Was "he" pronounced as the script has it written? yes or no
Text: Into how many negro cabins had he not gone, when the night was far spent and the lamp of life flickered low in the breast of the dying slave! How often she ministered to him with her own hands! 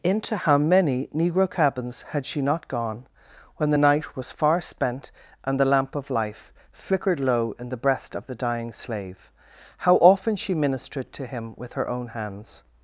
no